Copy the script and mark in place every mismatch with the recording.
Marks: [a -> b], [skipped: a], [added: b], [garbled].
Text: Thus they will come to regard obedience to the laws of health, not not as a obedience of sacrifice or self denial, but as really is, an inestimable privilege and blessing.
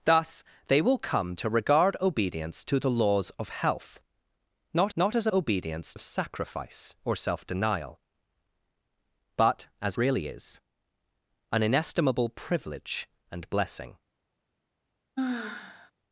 Thus they will come to regard obedience to the laws of health, not not as a obedience of sacrifice or self denial, but as really is, an inestimable privilege and blessing.